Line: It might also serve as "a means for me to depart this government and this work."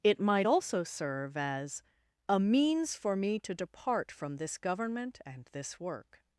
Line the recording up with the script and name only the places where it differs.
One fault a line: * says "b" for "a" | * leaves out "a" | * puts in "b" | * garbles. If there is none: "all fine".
* puts in "from"